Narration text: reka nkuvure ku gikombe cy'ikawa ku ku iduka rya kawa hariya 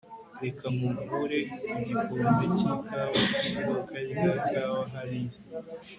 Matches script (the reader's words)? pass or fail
fail